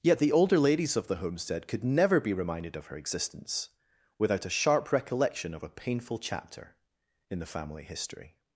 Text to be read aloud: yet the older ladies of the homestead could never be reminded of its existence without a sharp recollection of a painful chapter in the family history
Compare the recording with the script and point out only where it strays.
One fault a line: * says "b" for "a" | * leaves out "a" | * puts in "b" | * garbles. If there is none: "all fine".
* says "her" for "its"